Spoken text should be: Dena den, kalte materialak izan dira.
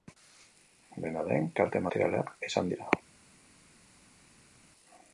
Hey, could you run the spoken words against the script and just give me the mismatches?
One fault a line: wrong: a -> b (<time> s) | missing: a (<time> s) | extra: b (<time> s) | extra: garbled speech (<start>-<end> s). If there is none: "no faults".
no faults